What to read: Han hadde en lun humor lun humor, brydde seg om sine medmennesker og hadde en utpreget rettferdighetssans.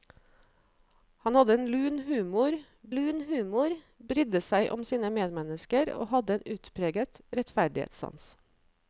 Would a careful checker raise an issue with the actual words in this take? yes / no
no